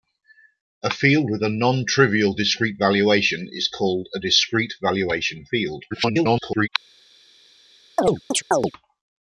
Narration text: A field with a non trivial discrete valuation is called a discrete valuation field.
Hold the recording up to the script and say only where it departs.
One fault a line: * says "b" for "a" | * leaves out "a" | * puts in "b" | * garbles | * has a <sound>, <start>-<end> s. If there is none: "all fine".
* garbles
* has a chirp, 8.0-8.7 s